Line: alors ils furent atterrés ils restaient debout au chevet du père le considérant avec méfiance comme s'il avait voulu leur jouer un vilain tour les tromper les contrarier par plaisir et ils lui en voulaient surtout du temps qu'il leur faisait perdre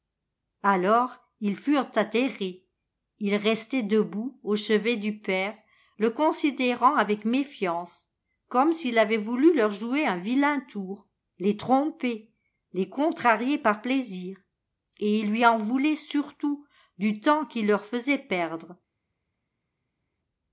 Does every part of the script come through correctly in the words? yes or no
yes